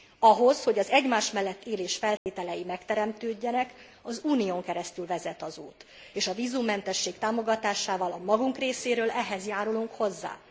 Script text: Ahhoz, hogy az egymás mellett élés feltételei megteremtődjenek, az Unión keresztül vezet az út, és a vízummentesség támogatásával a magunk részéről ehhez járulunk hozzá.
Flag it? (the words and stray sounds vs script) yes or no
yes